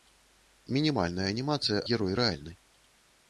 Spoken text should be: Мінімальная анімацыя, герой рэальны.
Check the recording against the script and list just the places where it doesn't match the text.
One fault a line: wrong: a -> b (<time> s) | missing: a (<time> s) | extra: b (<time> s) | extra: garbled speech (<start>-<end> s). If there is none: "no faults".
no faults